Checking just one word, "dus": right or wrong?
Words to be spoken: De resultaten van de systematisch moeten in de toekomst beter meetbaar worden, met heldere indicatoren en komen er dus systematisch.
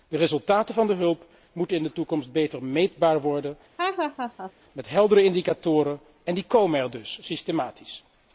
right